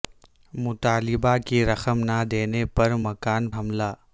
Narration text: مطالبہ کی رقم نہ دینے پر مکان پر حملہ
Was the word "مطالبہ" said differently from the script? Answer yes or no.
no